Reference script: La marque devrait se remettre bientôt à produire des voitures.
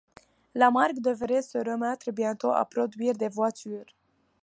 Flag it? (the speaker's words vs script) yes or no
no